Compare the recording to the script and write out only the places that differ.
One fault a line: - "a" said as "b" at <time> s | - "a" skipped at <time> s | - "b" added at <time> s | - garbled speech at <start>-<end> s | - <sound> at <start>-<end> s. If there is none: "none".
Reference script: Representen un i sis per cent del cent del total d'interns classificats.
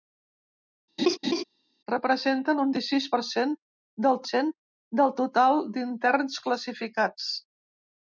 - laugh at 1.0-1.4 s